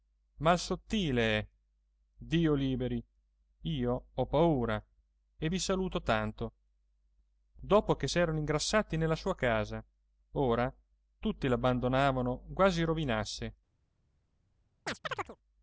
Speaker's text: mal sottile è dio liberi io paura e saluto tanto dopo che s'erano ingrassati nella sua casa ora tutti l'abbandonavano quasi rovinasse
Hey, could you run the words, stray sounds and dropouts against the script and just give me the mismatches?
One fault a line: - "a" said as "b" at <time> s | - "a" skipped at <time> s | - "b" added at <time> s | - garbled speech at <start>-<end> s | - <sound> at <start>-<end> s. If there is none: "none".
- "ho" added at 4.1 s
- "vi" added at 5.5 s
- chirp at 14.9-15.4 s